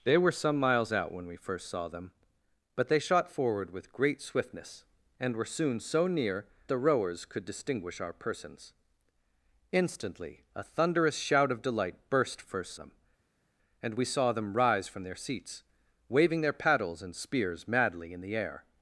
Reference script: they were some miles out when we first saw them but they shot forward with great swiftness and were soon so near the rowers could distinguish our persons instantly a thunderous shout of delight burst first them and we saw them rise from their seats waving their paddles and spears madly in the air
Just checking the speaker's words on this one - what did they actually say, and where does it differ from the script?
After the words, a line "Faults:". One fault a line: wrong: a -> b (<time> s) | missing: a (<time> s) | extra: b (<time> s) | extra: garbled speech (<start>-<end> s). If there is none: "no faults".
they were some miles out when we first saw them but they shot forward with great swiftness and were soon so near the rowers could distinguish our persons instantly a thunderous shout of delight burst first them and we saw them rise from their seats waving their paddles and spears madly in the air
Faults:
no faults